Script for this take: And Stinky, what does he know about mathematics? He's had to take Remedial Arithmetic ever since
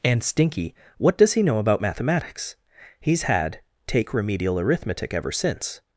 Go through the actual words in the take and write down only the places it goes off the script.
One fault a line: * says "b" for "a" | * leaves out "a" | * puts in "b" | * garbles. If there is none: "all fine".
* leaves out "to"